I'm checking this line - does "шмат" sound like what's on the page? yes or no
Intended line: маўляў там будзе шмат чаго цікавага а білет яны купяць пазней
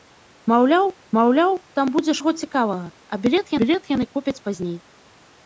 no